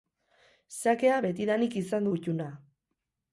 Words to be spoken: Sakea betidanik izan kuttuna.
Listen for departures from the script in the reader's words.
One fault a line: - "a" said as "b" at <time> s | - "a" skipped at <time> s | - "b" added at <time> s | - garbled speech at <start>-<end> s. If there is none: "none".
none